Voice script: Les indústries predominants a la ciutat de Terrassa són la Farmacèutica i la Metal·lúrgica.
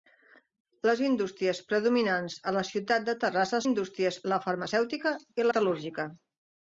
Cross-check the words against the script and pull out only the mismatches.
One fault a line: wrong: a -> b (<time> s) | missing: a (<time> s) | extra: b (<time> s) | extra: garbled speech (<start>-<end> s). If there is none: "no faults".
wrong: són -> indústries (3.6 s)
missing: la (5.5 s)